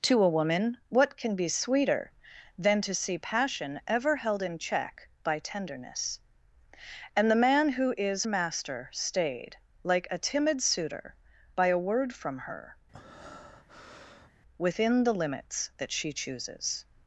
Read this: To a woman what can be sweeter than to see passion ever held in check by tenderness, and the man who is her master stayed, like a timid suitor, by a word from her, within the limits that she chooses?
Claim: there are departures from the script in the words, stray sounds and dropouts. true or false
true